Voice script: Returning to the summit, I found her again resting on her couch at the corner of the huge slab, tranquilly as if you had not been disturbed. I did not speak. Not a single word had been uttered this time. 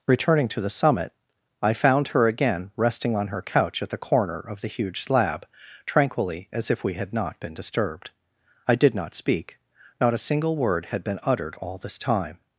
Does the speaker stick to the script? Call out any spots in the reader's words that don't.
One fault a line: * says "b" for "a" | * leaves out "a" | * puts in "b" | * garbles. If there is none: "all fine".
* says "we" for "you"
* puts in "all"